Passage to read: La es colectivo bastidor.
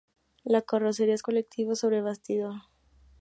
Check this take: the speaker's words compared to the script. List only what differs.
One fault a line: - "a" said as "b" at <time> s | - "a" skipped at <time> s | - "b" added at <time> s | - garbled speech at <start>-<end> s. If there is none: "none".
- "carrocería" added at 0.6 s
- "sobre" added at 1.7 s